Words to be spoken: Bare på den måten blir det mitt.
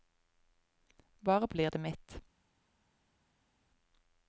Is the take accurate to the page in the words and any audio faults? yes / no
no